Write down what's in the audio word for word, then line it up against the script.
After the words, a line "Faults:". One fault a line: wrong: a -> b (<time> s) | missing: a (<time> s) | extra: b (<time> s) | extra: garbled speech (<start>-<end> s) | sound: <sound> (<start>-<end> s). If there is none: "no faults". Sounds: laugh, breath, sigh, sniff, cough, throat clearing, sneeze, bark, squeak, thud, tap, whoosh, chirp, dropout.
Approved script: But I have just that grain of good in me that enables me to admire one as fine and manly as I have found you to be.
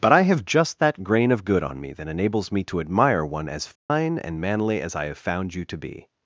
But I have just that grain of good on me that enables me to admire one as fine and manly as I have found you to be.
Faults:
wrong: in -> on (1.6 s)
sound: dropout (3.8-3.9 s)